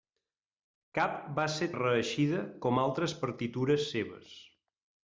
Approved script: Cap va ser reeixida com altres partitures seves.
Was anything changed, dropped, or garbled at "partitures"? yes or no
no